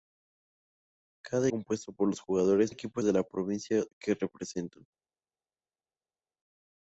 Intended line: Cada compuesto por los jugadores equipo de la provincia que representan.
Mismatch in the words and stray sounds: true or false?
false